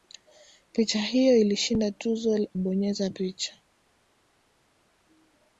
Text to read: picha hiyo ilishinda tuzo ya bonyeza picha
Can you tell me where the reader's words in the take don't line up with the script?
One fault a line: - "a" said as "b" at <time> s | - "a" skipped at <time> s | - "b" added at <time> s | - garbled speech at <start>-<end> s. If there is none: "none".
- "ya" skipped at 2.5 s